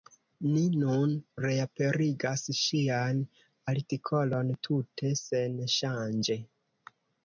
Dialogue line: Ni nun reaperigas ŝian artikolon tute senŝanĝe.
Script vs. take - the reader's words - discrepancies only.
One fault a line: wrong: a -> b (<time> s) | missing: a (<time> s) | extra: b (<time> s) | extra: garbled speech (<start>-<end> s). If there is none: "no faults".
no faults